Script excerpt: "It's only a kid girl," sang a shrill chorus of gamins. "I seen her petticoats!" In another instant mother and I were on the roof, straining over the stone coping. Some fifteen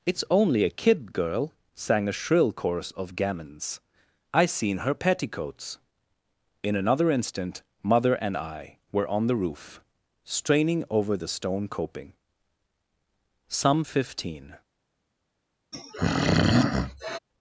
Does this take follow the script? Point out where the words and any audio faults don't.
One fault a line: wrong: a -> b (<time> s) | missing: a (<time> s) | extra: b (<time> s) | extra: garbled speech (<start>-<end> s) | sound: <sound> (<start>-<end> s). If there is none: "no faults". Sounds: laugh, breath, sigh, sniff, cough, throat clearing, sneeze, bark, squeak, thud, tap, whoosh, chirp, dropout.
sound: throat clearing (15.7-17.2 s)